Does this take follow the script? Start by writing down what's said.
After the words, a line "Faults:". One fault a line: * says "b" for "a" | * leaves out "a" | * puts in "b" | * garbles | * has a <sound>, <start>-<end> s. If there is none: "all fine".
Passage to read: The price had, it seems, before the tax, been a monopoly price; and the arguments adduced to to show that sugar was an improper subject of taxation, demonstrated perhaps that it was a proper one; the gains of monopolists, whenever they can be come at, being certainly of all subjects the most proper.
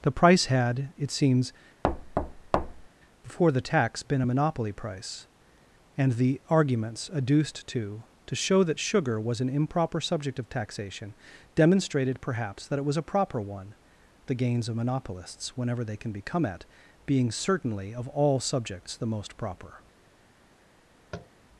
The price had, it seems, before the tax, been a monopoly price; and the arguments adduced to to show that sugar was an improper subject of taxation, demonstrated perhaps that it was a proper one; the gains of monopolists, whenever they can be come at, being certainly of all subjects the most proper.
Faults:
* has a thud, 1.8-2.9 s
* has a tap, 21.1-21.3 s